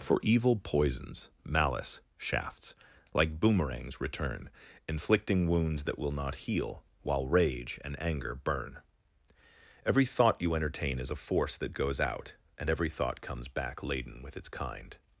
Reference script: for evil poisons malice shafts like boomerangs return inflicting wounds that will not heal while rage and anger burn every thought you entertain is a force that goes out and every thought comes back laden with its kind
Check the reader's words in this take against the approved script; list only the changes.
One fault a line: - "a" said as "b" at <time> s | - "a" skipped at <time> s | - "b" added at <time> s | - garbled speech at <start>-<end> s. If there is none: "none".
none